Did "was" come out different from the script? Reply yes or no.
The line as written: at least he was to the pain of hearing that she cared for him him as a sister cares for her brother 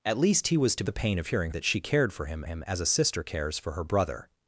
no